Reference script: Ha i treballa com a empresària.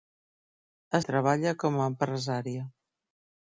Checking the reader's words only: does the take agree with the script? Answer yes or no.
yes